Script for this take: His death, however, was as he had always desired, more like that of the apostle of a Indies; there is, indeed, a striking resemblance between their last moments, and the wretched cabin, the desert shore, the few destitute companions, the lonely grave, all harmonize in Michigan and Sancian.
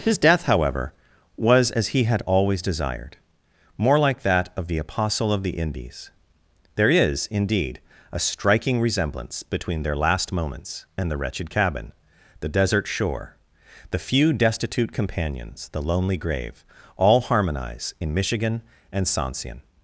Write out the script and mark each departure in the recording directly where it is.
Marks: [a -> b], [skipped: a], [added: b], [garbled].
His death, however, was as he had always desired, more like that of the apostle of [a -> the] Indies; there is, indeed, a striking resemblance between their last moments, and the wretched cabin, the desert shore, the few destitute companions, the lonely grave, all harmonize in Michigan and Sancian.